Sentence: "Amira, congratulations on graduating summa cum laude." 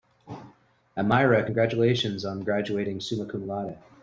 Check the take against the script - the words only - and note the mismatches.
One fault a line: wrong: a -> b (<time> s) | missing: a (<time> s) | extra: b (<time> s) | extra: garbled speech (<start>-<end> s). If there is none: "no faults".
no faults